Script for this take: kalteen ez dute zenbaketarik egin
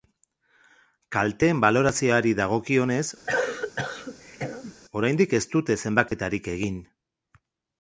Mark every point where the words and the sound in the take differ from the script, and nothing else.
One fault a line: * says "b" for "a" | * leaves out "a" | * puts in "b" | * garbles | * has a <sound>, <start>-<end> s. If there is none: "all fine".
* puts in "balorazioari dagokionez oraindik"
* has a cough, 3.3-4.7 s
* has a dropout, 6.1-6.1 s